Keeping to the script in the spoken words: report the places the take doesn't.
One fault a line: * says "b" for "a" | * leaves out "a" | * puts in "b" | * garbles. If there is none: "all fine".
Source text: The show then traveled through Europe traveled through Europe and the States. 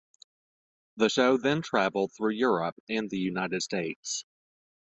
* leaves out "traveled through Europe"
* puts in "United"